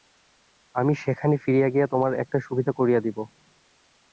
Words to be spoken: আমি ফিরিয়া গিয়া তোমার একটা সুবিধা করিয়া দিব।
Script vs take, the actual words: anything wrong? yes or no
yes